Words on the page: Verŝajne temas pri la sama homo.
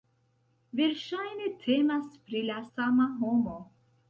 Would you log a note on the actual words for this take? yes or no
no